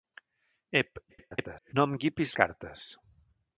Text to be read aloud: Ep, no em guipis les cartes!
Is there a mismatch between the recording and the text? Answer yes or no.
yes